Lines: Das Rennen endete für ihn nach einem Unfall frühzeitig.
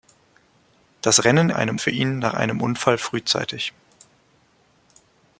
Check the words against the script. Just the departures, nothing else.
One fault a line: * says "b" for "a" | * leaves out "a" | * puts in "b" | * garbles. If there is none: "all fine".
* says "einem" for "endete"